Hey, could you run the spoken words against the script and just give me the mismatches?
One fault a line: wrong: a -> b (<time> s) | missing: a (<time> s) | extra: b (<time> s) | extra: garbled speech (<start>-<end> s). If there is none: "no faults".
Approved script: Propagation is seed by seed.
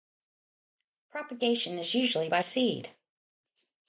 wrong: seed -> usually (1.9 s)